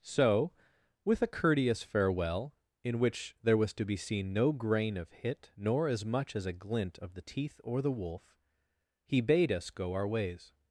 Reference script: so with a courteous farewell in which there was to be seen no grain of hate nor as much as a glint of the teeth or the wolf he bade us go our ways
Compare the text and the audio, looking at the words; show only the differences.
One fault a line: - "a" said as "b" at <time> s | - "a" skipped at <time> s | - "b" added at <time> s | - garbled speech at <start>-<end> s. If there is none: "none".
- "hate" said as "hit" at 5.1 s